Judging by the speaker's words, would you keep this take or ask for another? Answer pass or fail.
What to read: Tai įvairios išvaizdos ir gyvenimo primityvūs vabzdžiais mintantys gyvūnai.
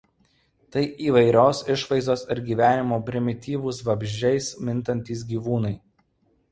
pass